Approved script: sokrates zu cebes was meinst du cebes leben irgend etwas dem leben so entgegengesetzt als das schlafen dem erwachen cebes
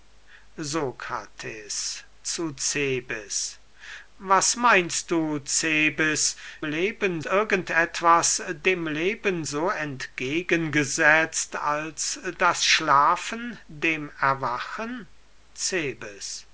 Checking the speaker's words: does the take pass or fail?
pass